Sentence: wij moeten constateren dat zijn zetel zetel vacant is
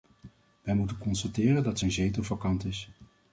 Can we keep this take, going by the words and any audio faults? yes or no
no